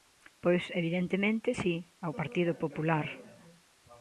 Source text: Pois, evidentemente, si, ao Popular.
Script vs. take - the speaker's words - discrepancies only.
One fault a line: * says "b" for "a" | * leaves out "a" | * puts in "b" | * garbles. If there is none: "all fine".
* puts in "Partido"